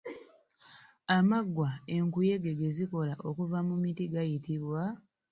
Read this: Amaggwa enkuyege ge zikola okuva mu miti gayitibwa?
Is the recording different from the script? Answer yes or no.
no